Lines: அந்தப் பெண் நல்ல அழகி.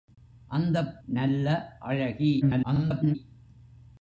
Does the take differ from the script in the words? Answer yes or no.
yes